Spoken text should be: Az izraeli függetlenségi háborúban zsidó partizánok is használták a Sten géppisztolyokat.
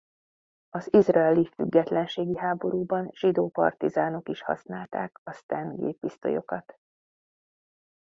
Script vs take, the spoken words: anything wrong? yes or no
no